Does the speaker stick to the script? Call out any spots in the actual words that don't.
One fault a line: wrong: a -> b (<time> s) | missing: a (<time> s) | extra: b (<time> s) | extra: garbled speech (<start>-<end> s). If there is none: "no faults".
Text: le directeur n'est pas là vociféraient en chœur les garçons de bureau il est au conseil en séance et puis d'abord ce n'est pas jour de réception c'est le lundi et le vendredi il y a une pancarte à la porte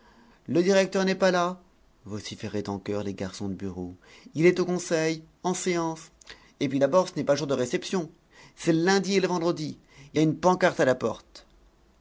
no faults